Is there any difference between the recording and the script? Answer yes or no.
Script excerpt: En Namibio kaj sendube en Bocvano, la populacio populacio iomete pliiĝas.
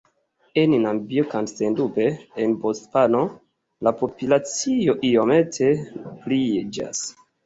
yes